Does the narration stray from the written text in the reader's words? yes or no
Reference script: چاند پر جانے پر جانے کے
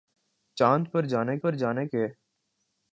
no